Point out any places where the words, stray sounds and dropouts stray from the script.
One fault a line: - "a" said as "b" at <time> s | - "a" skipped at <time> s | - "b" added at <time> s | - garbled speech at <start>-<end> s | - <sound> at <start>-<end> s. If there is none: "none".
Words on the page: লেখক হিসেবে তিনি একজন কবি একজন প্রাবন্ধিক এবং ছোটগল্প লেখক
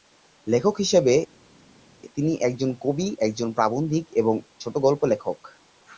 none